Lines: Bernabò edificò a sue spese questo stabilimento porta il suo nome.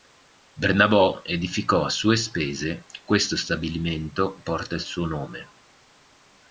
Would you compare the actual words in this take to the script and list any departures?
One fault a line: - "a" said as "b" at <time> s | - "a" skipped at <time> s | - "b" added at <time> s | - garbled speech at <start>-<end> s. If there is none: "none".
none